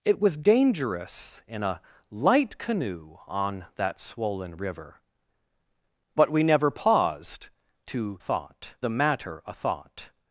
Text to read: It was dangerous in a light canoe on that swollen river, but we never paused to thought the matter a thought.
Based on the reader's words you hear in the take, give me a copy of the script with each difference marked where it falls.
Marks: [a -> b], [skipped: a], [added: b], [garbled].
It was dangerous in a light canoe on that swollen river, but we never paused to thought the matter a thought.